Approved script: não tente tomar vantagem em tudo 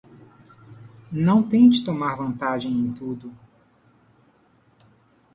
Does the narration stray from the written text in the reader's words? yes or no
no